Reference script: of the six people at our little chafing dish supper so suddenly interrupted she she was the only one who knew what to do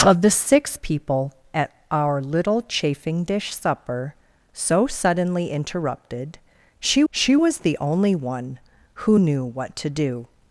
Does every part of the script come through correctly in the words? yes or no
yes